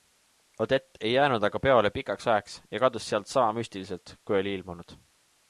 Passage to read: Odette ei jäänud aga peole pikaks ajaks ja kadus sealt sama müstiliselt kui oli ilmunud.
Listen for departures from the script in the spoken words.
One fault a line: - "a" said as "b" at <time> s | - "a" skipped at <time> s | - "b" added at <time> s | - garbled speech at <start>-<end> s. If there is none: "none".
none